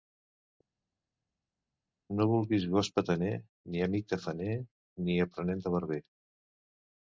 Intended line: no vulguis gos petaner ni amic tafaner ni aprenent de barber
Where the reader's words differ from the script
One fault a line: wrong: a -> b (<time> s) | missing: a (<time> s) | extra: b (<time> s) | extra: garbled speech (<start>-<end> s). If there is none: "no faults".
no faults